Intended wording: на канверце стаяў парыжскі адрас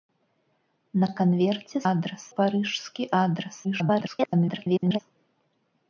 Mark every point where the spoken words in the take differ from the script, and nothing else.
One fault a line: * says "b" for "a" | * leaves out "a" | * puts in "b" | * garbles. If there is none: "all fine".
* says "адрас" for "стаяў"
* garbles